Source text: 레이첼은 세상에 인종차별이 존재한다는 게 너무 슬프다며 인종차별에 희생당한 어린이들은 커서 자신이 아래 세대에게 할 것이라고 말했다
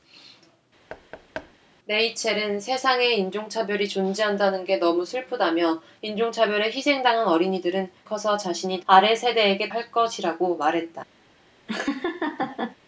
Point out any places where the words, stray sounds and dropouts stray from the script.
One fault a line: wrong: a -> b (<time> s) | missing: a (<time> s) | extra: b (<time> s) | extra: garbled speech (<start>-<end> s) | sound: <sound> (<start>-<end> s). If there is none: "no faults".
sound: thud (0.9-1.5 s)
sound: laugh (11.7-12.8 s)